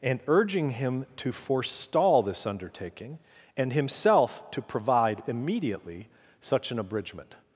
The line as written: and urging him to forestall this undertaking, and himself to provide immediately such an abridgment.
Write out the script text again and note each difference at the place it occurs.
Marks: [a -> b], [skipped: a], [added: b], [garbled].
and urging him to forestall this undertaking, and himself to provide immediately such an abridgment.